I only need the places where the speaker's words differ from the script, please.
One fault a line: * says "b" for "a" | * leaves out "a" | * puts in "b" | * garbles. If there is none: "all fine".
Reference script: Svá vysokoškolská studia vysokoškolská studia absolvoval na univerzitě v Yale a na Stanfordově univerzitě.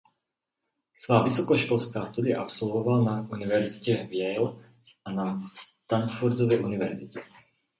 * leaves out "vysokoškolská studia"